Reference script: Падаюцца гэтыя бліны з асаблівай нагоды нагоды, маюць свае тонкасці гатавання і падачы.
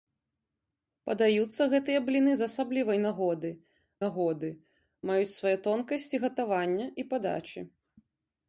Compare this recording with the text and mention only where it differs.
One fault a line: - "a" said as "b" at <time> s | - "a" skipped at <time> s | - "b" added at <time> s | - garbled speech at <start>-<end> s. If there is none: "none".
none